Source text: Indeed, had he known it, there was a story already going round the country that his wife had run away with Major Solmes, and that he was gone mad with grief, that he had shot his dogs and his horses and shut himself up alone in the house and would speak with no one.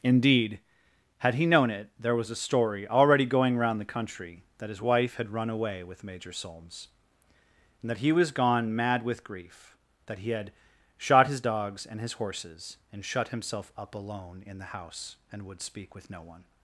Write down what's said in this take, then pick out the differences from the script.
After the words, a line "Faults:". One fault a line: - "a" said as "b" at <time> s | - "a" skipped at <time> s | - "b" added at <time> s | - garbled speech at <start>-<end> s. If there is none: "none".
Indeed, had he known it, there was a story already going round the country that his wife had run away with Major Solmes, and that he was gone mad with grief, that he had shot his dogs and his horses and shut himself up alone in the house and would speak with no one.
Faults:
none